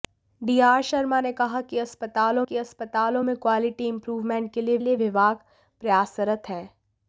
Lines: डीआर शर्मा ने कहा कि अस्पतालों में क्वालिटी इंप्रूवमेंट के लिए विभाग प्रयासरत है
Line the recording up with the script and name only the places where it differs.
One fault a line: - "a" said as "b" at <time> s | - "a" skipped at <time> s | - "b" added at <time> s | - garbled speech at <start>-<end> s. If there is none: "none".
- "कि अस्पतालों" added at 2.4 s
- "लिए" added at 4.8 s